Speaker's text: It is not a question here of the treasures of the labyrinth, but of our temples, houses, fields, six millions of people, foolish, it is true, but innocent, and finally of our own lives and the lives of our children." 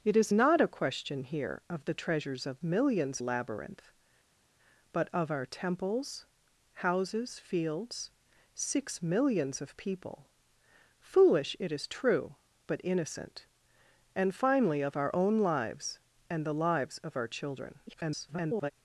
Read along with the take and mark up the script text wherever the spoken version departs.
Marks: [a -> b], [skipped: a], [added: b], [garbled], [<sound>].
It is not a question here of the treasures of [the -> millions] labyrinth, but of our temples, houses, fields, six millions of people, foolish, it is true, but innocent, and finally of our own lives and the lives of our children." [garbled]